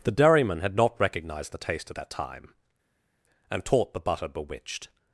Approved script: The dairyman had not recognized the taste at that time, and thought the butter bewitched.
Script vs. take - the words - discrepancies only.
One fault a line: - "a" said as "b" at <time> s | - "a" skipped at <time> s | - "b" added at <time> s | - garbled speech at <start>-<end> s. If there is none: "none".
- "thought" said as "taught" at 3.6 s